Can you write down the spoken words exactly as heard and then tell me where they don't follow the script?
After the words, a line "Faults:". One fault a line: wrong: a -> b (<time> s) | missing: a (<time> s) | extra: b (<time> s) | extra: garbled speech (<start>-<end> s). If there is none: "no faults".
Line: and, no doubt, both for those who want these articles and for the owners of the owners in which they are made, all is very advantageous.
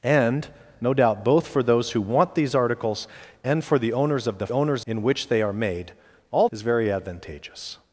and, no doubt, both for those who want these articles and for the owners of the owners in which they are made, all is very advantageous.
Faults:
no faults